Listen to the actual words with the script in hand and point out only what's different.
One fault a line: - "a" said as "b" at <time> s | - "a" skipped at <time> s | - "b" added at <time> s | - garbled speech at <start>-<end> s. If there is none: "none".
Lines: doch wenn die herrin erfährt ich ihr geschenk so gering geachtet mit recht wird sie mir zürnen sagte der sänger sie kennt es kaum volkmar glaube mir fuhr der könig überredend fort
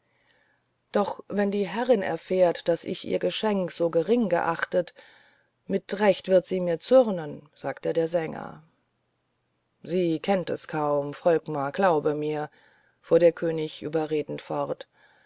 - "daß" added at 2.7 s